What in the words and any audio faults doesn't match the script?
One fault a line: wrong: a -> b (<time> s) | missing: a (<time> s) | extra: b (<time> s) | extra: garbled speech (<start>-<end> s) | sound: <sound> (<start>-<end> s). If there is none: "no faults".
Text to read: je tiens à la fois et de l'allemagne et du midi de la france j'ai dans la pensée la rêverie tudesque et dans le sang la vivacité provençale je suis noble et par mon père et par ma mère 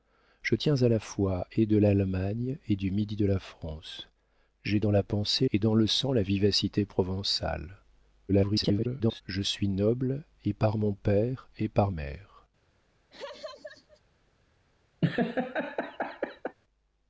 missing: la rêverie tudesque (5.5 s)
extra: garbled speech (8.3-9.2 s)
missing: ma (11.9 s)
sound: laugh (13.1-14.0 s)
sound: laugh (15.0-16.6 s)